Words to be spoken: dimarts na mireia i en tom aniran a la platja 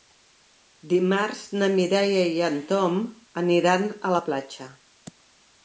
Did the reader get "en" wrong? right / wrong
right